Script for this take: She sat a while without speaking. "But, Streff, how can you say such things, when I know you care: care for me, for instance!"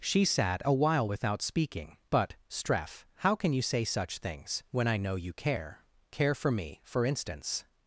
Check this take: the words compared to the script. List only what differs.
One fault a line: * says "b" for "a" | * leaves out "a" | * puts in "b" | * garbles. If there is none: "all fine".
all fine